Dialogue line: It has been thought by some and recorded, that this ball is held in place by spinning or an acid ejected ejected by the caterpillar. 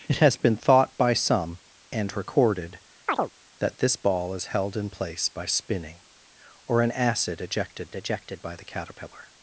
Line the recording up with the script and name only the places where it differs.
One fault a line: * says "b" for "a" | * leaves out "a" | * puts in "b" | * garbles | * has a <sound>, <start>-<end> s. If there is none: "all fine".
* has a chirp, 3.1-3.3 s